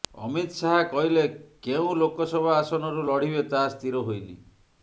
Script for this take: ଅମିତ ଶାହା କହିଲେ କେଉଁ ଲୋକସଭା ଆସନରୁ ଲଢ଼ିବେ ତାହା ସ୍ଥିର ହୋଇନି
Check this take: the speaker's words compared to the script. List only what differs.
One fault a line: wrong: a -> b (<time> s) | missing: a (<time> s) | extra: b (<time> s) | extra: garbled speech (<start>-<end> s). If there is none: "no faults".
no faults